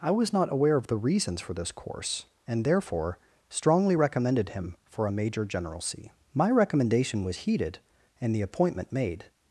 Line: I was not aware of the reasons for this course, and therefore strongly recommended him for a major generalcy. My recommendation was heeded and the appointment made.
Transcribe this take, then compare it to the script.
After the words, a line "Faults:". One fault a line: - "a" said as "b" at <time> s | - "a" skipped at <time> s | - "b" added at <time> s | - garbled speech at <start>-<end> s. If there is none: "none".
I was not aware of the reasons for this course, and therefore strongly recommended him for a major generalcy. My recommendation was heeded and the appointment made.
Faults:
none